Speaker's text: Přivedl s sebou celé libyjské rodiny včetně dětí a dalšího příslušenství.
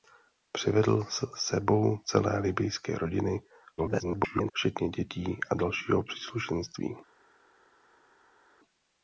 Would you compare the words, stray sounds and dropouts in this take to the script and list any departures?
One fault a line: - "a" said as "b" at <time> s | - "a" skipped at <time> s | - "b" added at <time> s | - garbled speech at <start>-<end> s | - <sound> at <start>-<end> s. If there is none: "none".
- garbled speech at 3.8-4.5 s